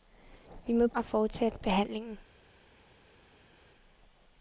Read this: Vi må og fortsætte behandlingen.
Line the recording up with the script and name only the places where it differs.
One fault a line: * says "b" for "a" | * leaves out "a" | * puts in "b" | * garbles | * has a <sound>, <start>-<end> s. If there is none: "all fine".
all fine